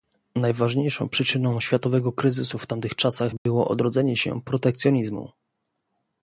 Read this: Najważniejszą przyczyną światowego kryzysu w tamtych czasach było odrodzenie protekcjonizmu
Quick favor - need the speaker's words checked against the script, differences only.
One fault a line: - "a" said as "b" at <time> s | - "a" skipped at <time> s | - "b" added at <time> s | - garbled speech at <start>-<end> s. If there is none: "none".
- "się" added at 4.2 s